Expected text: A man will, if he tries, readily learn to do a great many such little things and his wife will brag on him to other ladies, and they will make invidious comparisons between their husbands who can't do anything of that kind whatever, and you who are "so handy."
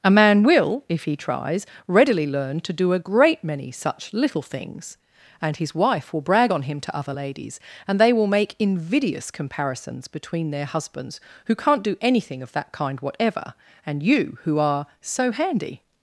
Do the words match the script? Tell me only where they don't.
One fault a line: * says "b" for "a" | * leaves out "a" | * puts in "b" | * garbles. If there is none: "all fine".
all fine